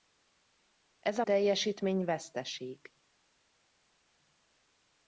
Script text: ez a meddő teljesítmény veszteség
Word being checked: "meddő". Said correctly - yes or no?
no